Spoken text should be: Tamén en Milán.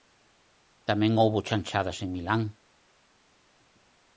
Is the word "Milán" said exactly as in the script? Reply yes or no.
yes